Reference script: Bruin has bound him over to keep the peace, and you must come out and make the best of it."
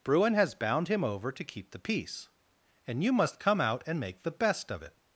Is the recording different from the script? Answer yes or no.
no